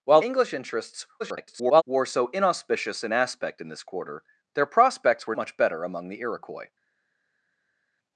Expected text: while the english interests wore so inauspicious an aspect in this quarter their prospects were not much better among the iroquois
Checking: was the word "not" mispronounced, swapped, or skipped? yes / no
yes